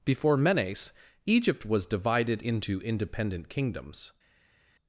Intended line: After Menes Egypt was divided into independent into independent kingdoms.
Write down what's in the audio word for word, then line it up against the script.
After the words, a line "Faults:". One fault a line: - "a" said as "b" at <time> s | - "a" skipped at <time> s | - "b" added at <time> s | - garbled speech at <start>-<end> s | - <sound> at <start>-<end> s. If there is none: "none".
Before Menes Egypt was divided into independent kingdoms.
Faults:
- "After" said as "Before" at 0.0 s
- "into independent" skipped at 3.5 s